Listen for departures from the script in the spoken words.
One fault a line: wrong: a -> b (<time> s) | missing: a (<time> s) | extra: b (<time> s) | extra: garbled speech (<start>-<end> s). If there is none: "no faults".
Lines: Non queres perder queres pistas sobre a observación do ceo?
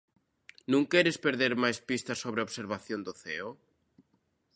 wrong: queres -> máis (1.6 s)